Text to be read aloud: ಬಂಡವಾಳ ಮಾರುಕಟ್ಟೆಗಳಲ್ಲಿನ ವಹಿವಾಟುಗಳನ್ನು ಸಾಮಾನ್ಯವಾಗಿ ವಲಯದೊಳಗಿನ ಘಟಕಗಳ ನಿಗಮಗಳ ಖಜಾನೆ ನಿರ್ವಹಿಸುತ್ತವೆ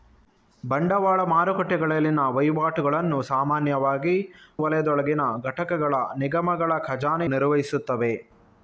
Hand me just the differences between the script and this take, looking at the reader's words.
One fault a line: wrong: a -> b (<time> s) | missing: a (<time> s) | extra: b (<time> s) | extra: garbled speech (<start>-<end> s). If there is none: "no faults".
no faults